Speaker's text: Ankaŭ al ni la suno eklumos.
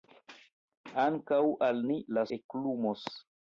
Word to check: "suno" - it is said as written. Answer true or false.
false